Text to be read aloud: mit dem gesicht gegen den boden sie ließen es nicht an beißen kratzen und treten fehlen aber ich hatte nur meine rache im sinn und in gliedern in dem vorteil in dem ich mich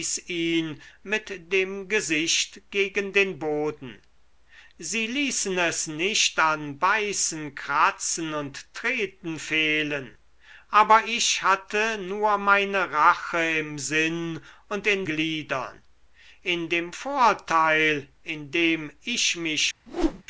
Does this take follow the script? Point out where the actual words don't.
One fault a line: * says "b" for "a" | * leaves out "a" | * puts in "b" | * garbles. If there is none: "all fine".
all fine